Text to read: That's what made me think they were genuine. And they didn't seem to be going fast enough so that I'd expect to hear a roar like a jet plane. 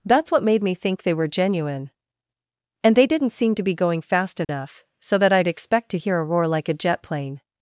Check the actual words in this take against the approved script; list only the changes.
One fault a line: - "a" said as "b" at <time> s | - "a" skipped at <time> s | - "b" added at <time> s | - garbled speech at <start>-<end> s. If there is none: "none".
none